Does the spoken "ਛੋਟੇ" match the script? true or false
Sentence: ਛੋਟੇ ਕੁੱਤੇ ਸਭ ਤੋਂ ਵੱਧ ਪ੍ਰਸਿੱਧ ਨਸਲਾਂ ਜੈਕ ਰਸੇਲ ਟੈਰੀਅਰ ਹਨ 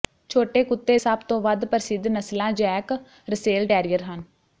true